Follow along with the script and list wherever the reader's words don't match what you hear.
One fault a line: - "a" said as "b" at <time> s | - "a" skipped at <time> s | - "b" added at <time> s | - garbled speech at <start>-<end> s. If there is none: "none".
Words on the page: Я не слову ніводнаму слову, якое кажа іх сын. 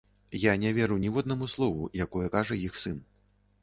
- "слову" said as "веру" at 0.8 s